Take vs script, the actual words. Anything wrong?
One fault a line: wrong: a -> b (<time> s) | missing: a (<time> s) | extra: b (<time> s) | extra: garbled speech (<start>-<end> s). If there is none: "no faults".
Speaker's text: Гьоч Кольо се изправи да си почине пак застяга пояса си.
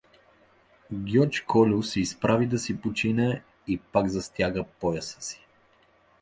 extra: и (3.7 s)